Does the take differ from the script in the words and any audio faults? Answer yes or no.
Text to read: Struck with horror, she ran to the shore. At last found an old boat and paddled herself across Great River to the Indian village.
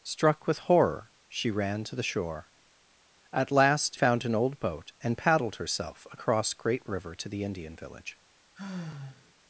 yes